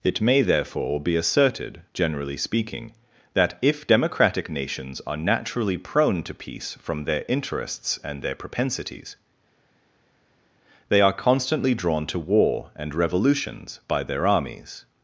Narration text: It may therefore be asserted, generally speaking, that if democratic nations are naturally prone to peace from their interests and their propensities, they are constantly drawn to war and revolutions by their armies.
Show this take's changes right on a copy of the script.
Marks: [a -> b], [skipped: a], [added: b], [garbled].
It may therefore be asserted, generally speaking, that if democratic nations are naturally prone to peace from their interests and their propensities, they are constantly drawn to war and revolutions by their armies.